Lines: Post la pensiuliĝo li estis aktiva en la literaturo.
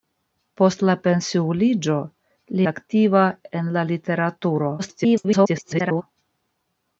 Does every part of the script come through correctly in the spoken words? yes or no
no